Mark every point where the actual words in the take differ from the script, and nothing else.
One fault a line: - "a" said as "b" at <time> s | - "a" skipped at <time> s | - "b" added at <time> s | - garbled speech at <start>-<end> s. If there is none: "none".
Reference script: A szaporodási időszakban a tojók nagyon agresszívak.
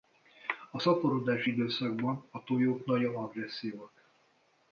none